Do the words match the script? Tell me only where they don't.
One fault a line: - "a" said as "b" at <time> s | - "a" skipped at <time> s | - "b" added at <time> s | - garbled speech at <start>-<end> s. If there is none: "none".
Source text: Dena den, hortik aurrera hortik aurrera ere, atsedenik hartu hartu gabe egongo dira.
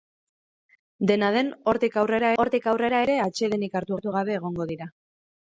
none